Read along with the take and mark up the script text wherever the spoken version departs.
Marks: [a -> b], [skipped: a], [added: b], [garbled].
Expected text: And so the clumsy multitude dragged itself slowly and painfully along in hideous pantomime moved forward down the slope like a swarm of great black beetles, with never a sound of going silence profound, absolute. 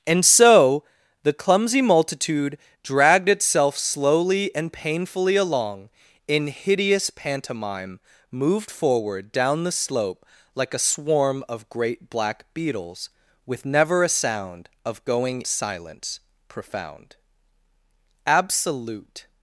And so the clumsy multitude dragged itself slowly and painfully along in hideous pantomime moved forward down the slope like a swarm of great black beetles, with never a sound of going silence profound, absolute.